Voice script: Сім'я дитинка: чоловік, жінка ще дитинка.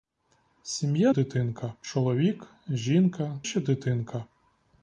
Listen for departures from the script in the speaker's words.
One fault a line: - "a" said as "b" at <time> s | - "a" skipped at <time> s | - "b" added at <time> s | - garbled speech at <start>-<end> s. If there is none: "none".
none